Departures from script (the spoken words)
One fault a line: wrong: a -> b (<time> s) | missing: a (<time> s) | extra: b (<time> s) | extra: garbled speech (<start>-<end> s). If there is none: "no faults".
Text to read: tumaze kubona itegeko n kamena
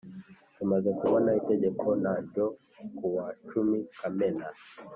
extra: ryo kuwa cumi (2.3 s)